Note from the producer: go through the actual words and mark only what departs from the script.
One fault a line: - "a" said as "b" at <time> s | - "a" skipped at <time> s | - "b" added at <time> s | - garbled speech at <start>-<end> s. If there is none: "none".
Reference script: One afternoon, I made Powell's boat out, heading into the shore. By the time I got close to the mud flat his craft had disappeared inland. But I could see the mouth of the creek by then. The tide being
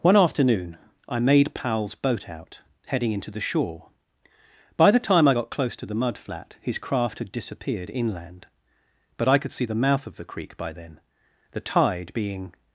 none